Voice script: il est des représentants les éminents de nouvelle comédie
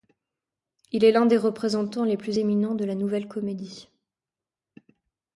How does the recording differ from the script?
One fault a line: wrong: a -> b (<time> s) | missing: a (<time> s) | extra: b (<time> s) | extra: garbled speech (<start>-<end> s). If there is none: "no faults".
extra: l'un (1.1 s)
extra: plus (2.2 s)
extra: la (2.8 s)